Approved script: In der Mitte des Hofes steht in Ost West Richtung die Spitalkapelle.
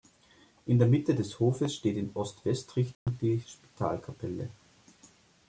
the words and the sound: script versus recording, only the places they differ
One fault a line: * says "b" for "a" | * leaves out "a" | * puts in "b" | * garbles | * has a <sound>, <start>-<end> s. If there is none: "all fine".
* has a dropout, 2.9-3.1 s